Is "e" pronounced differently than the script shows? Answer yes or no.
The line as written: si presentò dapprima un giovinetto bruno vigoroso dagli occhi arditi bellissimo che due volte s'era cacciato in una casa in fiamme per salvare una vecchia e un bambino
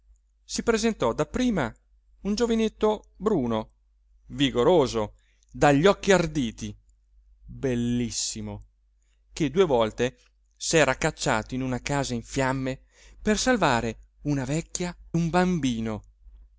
yes